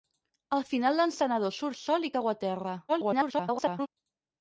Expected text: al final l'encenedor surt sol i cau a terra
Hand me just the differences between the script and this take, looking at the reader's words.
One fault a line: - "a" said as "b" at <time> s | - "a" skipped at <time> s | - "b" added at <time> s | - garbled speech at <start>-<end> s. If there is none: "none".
- garbled speech at 2.9-3.9 s